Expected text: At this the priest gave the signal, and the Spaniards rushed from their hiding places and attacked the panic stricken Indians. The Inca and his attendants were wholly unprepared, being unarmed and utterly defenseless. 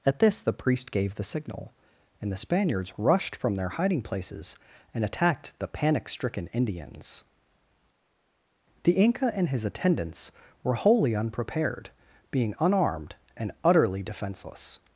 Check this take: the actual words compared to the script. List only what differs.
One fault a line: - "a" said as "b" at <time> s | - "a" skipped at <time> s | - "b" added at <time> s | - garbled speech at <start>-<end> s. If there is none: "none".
none